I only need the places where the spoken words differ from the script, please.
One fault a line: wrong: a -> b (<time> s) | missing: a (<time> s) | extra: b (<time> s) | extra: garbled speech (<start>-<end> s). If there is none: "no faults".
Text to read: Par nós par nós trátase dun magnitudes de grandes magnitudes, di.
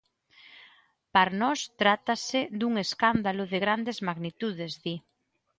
missing: par nós (1.6 s)
wrong: magnitudes -> escándalo (2.9 s)